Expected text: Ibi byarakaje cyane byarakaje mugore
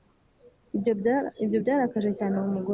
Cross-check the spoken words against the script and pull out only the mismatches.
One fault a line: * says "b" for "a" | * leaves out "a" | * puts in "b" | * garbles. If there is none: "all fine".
* says "Ibyo" for "Ibi"
* says "uwo" for "byarakaje"